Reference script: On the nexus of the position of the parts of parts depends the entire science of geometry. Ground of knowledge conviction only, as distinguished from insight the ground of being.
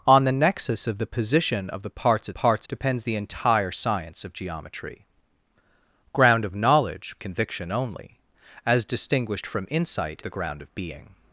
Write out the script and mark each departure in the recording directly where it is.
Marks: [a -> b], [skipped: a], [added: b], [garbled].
On the nexus of the position of the parts of parts depends the entire science of geometry. Ground of knowledge conviction only, as distinguished from insight the ground of being.